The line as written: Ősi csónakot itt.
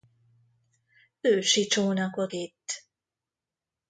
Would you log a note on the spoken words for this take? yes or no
no